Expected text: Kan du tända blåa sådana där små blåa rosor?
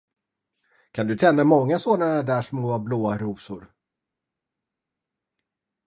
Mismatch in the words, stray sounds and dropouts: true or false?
true